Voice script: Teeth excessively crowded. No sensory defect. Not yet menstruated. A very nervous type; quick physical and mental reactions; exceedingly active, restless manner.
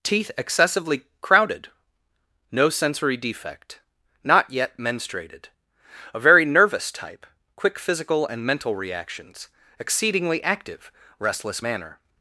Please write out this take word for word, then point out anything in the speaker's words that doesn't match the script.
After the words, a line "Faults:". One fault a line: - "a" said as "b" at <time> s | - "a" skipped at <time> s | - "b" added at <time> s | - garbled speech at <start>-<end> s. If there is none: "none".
Teeth excessively crowded. No sensory defect. Not yet menstruated. A very nervous type; quick physical and mental reactions; exceedingly active, restless manner.
Faults:
none